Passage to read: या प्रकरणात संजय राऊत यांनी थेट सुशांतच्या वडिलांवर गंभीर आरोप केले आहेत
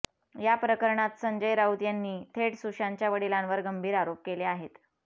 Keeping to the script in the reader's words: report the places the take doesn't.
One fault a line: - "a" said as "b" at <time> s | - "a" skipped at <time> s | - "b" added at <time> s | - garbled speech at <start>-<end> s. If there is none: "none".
none